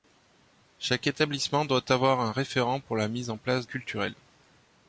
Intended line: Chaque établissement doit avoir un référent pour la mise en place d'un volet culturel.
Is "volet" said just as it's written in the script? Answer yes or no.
no